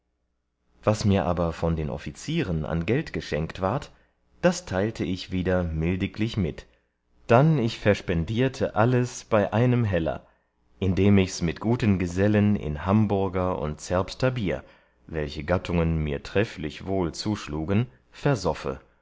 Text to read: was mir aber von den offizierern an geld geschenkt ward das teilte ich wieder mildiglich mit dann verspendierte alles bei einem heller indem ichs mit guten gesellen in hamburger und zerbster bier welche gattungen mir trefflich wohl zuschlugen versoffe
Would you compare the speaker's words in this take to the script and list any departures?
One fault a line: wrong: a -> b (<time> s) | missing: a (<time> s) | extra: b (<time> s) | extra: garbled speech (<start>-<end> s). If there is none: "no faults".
extra: ich (7.6 s)